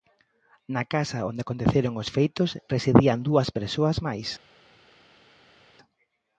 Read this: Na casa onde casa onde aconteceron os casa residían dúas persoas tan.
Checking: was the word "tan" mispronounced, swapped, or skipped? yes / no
yes